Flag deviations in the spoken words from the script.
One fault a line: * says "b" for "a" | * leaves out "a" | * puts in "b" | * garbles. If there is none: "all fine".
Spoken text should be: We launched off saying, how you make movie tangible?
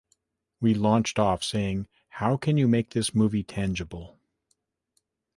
* puts in "can"
* puts in "this"